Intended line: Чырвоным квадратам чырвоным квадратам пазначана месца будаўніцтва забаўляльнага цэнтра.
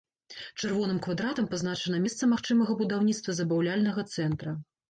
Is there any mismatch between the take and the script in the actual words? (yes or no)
yes